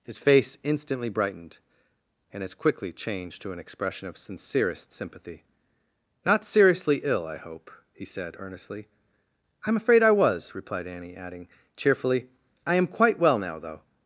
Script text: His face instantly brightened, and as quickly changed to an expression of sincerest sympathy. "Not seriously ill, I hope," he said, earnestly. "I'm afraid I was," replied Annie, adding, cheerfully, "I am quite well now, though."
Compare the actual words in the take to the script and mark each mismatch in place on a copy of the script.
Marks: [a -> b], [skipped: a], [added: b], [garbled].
His face instantly brightened, and as quickly changed to an expression of sincerest sympathy. "Not seriously ill, I hope," he said, earnestly. "I'm afraid I was," replied Annie, adding, cheerfully, "I am quite well now, though."